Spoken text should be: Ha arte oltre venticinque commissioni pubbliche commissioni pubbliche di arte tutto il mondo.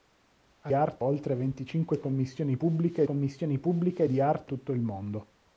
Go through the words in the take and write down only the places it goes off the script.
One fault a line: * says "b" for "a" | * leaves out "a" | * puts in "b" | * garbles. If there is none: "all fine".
all fine